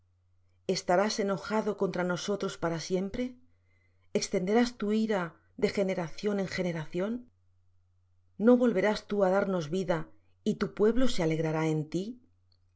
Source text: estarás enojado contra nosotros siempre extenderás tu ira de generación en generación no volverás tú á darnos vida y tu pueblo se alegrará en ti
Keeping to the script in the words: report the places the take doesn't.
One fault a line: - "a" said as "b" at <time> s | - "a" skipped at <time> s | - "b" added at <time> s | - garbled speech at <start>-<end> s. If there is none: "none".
- "para" added at 2.6 s